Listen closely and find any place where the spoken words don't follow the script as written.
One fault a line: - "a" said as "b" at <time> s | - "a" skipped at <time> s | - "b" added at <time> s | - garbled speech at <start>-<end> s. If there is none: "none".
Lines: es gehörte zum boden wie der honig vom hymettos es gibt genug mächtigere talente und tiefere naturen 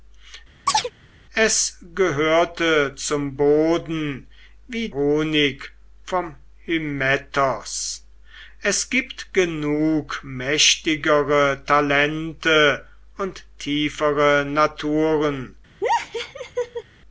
- "der" skipped at 4.9 s